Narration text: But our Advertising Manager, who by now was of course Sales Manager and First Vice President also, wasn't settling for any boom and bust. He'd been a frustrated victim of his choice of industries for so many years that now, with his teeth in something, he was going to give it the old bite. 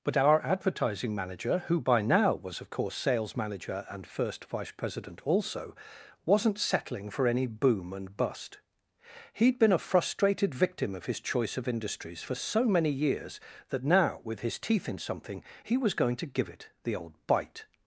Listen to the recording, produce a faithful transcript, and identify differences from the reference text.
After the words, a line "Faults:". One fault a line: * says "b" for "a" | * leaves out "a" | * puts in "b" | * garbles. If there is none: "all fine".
But our Advertising Manager, who by now was of course Sales Manager and First Vice President also, wasn't settling for any boom and bust. He'd been a frustrated victim of his choice of industries for so many years that now, with his teeth in something, he was going to give it the old bite.
Faults:
all fine